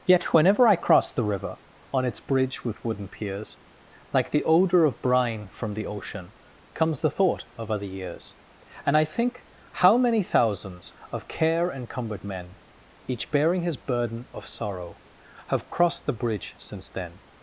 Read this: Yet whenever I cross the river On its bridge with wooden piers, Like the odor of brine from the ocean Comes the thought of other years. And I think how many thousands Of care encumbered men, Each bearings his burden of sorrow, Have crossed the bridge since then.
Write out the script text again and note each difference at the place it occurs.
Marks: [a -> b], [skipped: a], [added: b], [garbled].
Yet whenever I cross the river On its bridge with wooden piers, Like the odor of brine from the ocean Comes the thought of other years. And I think how many thousands Of care encumbered men, Each [bearings -> bearing] his burden of sorrow, Have crossed the bridge since then.